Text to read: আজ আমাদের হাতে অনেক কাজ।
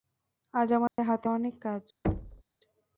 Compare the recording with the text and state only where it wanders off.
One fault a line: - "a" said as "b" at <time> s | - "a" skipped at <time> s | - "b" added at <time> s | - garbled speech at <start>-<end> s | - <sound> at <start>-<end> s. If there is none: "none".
- dropout at 0.9-1.0 s
- thud at 2.0-2.4 s